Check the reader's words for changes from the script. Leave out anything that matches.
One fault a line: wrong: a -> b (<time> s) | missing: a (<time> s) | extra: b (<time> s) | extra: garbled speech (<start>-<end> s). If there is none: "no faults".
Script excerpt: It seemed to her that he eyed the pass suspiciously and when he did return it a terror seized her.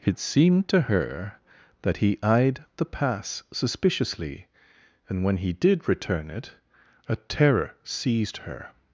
no faults